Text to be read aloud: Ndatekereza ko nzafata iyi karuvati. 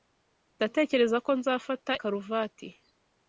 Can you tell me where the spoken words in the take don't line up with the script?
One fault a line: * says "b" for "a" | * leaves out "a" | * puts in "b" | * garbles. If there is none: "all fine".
* leaves out "iyi"